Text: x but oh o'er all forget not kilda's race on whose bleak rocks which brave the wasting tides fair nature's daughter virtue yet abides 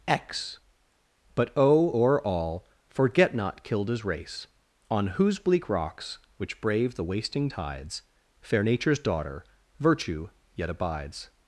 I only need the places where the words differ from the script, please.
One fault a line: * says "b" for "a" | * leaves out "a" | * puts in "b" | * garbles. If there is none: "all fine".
all fine